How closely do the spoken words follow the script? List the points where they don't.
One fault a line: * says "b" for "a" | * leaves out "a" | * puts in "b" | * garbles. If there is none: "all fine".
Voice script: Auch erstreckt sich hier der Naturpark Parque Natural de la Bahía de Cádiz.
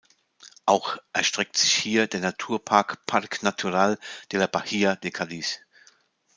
all fine